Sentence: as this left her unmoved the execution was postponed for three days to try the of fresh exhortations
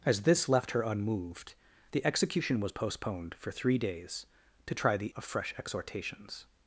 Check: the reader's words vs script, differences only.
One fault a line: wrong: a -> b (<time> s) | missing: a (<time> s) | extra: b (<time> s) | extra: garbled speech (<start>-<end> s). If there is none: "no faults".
no faults